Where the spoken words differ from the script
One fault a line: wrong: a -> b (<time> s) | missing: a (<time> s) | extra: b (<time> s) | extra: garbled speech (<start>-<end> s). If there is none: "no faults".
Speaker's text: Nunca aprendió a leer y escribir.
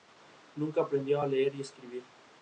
no faults